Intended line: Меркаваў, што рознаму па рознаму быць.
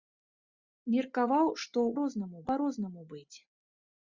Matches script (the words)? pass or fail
pass